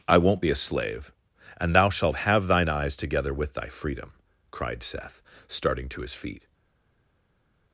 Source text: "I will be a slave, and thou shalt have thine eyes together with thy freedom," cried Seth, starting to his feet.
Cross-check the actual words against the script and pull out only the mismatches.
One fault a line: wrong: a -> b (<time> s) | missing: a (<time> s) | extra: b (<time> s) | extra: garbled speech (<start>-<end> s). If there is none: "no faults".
wrong: will -> won't (0.2 s)